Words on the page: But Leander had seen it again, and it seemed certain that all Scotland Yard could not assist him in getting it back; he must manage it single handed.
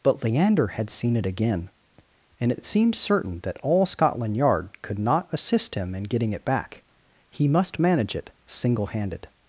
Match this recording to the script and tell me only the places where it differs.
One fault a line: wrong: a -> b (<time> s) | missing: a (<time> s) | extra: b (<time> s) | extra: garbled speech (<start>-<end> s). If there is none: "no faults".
extra: it (2.6 s)